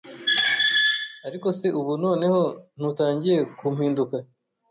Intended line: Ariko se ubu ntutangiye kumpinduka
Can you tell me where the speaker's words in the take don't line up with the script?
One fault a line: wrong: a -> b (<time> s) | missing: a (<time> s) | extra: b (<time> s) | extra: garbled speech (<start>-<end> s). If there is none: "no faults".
extra: noneho (2.0 s)